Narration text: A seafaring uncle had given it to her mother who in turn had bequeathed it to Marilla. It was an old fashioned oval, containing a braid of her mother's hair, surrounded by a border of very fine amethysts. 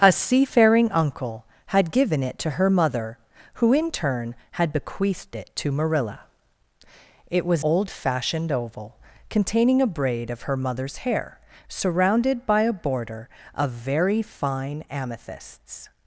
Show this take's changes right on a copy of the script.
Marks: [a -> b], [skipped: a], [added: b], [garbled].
A seafaring uncle had given it to her mother who in turn had bequeathed it to Marilla. It was [skipped: an] old fashioned oval, containing a braid of her mother's hair, surrounded by a border of very fine amethysts.